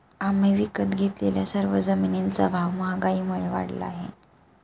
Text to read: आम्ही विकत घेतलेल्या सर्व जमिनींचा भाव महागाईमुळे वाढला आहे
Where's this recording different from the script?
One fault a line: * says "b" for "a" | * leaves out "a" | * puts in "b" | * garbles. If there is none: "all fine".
all fine